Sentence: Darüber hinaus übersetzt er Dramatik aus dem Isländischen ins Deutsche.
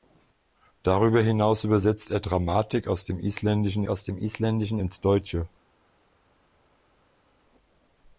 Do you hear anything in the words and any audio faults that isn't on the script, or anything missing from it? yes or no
yes